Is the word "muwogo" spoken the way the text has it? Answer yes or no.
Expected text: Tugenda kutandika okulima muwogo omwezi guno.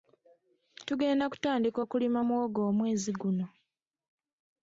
yes